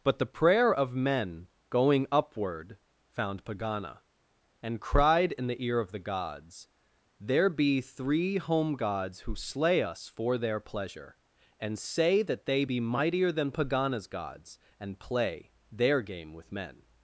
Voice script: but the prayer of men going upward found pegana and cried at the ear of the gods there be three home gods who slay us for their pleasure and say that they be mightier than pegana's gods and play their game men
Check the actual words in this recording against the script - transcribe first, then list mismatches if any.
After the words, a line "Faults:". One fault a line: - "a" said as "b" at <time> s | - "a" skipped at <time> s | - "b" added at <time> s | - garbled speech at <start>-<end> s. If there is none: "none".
but the prayer of men going upward found pegana and cried in the ear of the gods there be three home gods who slay us for their pleasure and say that they be mightier than pegana's gods and play their game with men
Faults:
- "at" said as "in" at 5.3 s
- "with" added at 16.3 s